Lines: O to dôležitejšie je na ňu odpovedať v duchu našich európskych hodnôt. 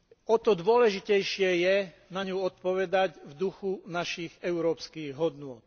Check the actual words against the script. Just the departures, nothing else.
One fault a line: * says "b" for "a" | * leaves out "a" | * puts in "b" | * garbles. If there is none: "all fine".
all fine